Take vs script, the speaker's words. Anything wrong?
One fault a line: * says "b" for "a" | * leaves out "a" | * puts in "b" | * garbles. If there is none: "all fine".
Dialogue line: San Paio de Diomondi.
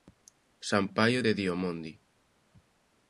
all fine